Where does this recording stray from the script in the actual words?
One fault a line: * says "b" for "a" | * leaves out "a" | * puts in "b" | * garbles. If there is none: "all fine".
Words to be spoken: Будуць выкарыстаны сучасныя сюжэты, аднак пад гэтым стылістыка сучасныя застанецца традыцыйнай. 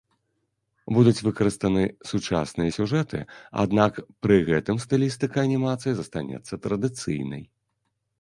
* says "пры" for "пад"
* says "анімацыі" for "сучасныя"